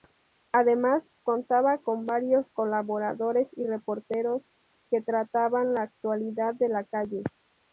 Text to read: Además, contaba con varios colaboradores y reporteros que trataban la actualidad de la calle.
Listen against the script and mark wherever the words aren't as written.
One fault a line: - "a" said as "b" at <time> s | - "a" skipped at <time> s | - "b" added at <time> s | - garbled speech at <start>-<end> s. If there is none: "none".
none